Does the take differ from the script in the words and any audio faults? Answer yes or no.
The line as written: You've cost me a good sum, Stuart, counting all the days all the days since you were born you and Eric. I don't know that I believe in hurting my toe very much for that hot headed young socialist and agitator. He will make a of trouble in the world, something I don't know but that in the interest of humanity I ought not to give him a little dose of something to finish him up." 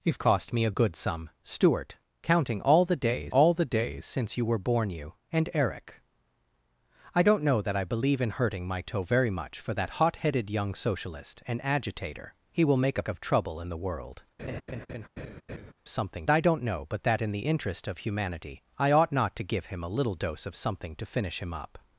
yes